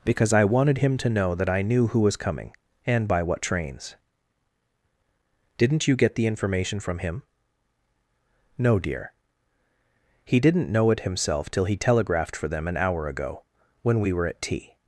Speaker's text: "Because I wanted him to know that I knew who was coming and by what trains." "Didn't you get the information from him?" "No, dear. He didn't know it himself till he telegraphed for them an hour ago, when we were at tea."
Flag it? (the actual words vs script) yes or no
no